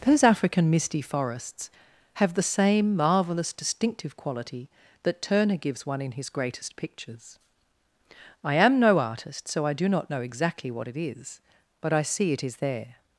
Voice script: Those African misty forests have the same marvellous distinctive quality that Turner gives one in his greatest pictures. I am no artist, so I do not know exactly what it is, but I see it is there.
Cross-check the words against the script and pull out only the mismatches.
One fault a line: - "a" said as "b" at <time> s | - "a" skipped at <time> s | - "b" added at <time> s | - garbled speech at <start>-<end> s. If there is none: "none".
none